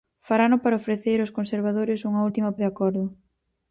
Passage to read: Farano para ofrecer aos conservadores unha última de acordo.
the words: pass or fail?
pass